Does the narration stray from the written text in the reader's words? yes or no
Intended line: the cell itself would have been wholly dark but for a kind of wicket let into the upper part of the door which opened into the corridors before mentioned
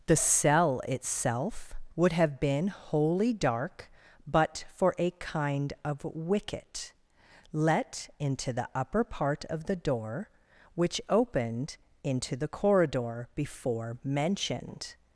yes